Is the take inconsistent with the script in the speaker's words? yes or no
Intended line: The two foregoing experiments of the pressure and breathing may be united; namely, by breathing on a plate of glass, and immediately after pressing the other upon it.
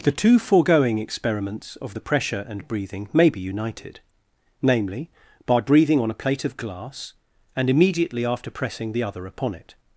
no